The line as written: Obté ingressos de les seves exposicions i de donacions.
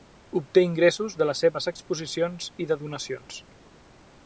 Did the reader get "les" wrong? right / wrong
right